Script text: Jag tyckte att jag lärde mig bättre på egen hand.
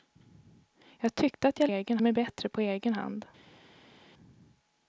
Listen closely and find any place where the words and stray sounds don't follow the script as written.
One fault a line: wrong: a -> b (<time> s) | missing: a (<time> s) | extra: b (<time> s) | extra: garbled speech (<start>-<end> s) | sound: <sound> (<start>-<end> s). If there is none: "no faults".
wrong: lärde -> egen (1.6 s)